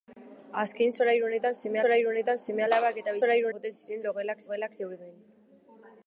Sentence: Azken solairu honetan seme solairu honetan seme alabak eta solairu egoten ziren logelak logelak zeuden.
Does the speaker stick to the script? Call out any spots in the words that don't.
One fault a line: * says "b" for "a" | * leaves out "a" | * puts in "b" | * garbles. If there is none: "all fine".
all fine